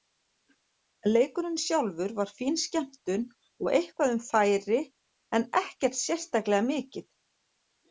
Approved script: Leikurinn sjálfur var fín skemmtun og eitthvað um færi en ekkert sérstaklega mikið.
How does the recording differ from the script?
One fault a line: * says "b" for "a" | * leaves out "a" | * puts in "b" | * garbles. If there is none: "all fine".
all fine